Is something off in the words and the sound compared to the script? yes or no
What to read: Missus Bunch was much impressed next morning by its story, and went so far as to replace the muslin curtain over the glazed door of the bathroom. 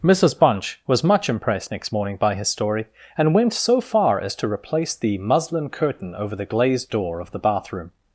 yes